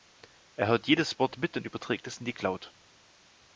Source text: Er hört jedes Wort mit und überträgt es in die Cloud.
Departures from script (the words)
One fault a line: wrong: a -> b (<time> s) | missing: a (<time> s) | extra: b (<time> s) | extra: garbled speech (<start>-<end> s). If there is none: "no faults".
no faults